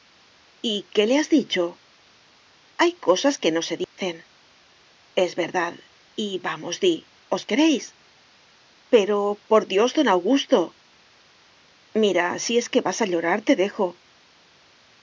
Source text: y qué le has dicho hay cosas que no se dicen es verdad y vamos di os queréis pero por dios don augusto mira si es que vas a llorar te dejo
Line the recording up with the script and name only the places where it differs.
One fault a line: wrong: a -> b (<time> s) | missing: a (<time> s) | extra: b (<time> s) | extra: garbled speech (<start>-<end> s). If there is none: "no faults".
no faults